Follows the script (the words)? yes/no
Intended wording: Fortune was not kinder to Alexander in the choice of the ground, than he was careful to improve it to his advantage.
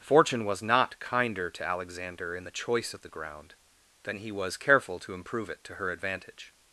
no